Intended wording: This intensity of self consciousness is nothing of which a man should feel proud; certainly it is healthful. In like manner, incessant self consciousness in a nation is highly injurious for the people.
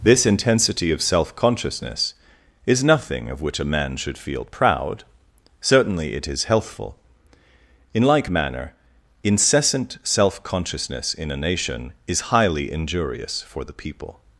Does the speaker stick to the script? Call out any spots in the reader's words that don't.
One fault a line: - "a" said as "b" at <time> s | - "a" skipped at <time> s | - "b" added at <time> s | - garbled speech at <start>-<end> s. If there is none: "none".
none